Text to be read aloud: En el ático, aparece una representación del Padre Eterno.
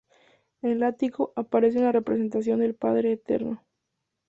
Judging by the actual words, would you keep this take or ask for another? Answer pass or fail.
pass